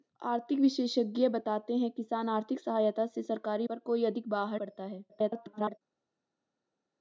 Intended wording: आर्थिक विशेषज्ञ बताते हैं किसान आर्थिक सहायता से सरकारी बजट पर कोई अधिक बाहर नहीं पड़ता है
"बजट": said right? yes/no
no